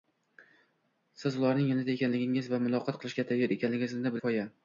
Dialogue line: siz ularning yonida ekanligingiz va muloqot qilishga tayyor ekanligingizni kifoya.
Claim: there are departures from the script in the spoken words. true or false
false